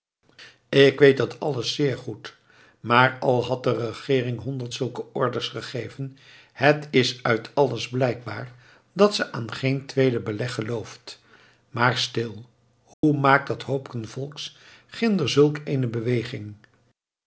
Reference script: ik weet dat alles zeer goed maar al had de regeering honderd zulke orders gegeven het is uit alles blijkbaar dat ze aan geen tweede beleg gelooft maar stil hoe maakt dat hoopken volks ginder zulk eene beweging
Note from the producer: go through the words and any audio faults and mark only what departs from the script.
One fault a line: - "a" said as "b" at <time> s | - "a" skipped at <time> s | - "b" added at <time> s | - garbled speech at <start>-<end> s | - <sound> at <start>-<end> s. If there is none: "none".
- dropout at 12.9-13.0 s